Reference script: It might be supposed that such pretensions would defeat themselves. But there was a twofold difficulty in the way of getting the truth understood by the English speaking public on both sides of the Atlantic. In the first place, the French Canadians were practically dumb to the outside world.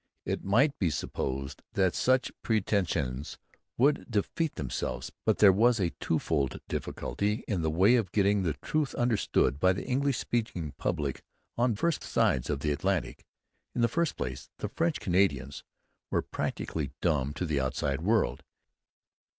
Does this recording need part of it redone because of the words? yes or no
yes